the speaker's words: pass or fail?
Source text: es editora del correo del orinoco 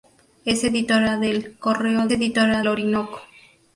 fail